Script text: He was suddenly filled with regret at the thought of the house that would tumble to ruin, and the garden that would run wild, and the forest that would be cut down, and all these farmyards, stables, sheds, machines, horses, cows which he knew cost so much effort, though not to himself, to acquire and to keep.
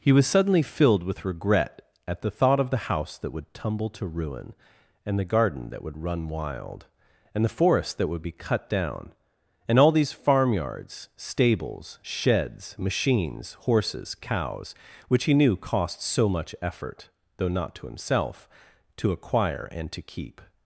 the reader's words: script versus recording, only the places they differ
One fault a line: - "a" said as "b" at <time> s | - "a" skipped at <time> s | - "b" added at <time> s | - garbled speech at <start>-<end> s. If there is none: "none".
none